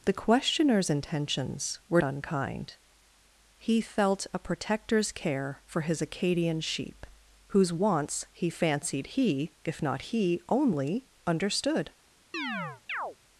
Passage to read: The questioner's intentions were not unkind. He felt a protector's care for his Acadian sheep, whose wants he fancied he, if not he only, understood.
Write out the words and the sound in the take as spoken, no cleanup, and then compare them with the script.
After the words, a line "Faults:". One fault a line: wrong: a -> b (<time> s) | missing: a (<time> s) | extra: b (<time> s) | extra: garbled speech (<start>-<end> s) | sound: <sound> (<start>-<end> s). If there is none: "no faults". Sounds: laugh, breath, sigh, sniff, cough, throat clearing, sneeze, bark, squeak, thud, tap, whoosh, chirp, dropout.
The questioner's intentions were unkind. He felt a protector's care for his Acadian sheep, whose wants he fancied he, if not he only, understood.
Faults:
missing: not (2.0 s)
sound: chirp (12.3-13.2 s)